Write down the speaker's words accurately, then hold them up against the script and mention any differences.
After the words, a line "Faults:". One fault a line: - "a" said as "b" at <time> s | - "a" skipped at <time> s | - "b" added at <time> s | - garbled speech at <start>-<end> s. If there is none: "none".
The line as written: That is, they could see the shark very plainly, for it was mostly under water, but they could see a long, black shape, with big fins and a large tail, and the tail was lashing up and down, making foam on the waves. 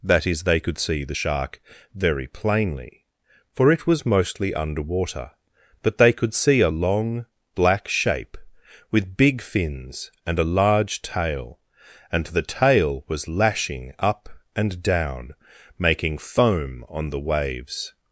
That is, they could see the shark very plainly, for it was mostly under water, but they could see a long, black shape, with big fins and a large tail, and the tail was lashing up and down, making foam on the waves.
Faults:
none